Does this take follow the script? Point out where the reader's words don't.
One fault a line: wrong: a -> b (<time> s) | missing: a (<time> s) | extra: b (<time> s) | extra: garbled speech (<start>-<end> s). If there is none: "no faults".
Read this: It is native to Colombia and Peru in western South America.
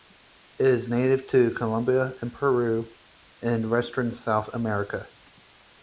no faults